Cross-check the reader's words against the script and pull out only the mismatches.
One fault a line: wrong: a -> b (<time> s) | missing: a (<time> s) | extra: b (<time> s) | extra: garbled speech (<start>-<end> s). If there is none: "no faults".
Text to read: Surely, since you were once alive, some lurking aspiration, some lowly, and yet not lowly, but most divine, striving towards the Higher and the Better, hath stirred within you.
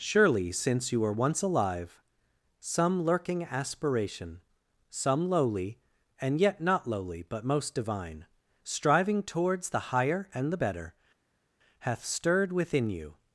no faults